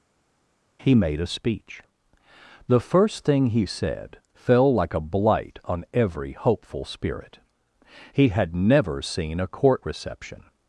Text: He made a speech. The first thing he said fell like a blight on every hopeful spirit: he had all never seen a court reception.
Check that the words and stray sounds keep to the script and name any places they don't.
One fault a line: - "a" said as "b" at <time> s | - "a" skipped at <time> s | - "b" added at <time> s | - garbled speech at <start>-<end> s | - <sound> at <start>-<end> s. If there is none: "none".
- "all" skipped at 8.6 s